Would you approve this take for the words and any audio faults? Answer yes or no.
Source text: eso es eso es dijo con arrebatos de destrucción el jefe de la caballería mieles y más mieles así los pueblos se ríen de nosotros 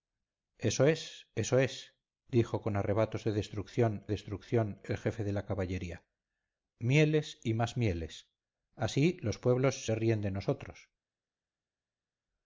no